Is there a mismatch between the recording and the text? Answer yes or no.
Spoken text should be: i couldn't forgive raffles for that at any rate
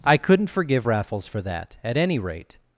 no